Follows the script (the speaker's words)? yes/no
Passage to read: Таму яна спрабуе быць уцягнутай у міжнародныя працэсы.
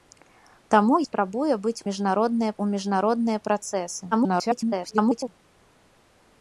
no